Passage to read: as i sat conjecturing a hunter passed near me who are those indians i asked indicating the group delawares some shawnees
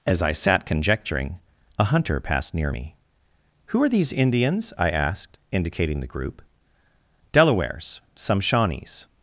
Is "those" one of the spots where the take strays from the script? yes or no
yes